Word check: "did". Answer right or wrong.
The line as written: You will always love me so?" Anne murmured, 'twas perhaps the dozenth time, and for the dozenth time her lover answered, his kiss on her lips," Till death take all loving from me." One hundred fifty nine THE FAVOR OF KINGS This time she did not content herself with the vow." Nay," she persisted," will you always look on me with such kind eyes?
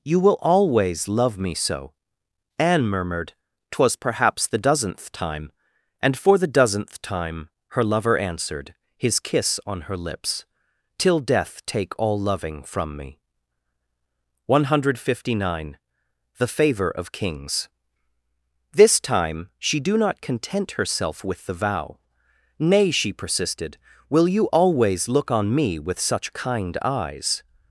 wrong